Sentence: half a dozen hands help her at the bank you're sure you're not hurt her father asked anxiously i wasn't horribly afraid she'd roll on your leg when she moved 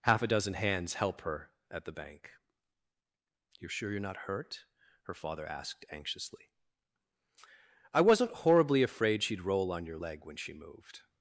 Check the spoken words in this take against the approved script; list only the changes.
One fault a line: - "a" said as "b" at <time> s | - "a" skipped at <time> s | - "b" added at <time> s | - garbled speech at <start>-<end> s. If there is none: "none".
none